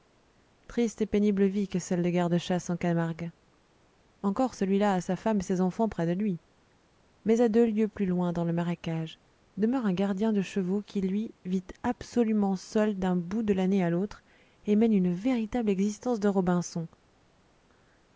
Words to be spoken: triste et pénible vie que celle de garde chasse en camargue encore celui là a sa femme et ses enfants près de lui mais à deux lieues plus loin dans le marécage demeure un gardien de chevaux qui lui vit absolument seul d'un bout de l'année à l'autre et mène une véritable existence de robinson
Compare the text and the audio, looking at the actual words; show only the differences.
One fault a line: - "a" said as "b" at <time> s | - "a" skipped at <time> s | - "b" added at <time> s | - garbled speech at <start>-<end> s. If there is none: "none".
none